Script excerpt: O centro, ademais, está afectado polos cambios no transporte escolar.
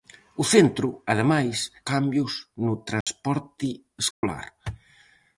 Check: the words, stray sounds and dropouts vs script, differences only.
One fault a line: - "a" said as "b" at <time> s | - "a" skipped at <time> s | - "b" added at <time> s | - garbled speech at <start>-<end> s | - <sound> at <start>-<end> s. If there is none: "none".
- "está afectado polos" skipped at 1.6 s
- dropout at 3.0-3.1 s
- dropout at 4.1-4.2 s